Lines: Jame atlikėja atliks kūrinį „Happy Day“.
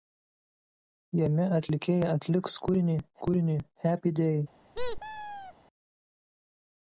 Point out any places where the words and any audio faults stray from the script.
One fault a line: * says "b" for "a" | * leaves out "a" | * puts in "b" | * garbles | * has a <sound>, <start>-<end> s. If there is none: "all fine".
* puts in "kūrinį"
* has a squeak, 4.7-5.5 s